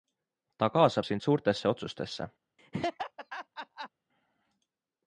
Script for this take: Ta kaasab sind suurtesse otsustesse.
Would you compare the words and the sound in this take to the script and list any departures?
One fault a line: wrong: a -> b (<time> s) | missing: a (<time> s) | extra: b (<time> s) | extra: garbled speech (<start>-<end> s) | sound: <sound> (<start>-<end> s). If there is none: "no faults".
sound: laugh (2.6-3.9 s)